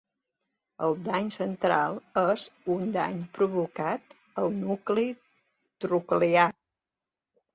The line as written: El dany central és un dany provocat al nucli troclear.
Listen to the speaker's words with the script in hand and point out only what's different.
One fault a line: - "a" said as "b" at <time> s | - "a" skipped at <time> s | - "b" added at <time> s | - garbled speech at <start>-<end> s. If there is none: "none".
none